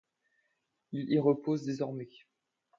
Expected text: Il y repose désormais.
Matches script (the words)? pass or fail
pass